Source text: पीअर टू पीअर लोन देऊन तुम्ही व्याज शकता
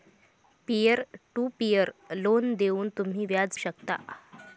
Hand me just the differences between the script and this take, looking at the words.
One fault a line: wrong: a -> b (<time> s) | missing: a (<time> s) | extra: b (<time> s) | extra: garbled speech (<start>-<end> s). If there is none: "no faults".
no faults